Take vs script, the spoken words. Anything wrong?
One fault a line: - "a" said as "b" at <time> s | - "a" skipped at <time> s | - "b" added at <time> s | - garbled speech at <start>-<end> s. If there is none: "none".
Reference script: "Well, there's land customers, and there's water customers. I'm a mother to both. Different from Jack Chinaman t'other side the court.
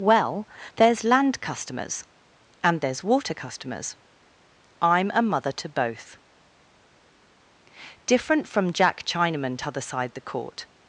none